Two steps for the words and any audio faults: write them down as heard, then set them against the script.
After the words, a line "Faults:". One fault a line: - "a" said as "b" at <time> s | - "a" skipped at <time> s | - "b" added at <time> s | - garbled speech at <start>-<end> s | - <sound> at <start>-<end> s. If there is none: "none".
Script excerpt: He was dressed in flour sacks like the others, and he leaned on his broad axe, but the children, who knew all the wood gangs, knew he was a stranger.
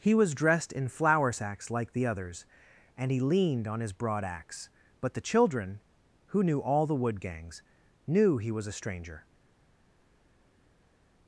He was dressed in flour sacks like the others, and he leaned on his broad axe, but the children, who knew all the wood gangs, knew he was a stranger.
Faults:
none